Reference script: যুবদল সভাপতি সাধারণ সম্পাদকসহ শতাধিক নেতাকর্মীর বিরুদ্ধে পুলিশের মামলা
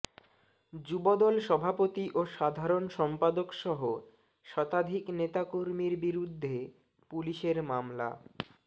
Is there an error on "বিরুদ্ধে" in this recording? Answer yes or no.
no